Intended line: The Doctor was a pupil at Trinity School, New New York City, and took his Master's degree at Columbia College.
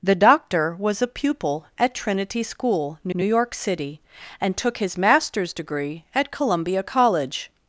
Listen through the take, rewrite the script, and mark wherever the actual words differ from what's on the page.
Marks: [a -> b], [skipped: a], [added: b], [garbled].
The Doctor was a pupil at Trinity School, New New York City, and took his Master's degree at Columbia College.